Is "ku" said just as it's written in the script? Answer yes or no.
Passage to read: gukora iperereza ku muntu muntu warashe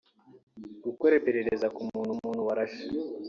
yes